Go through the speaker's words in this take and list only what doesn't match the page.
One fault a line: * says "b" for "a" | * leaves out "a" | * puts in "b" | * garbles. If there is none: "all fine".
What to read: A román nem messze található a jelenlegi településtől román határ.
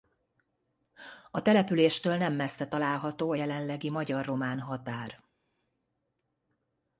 * says "településtől" for "román"
* says "magyar" for "településtől"